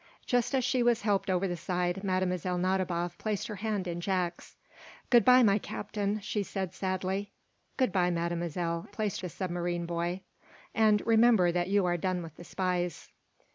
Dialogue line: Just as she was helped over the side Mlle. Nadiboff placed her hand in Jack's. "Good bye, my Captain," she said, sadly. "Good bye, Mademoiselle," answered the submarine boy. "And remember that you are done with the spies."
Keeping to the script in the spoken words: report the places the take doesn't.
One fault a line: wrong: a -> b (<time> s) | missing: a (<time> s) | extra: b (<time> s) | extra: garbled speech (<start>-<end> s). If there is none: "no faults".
wrong: answered -> placed (8.9 s)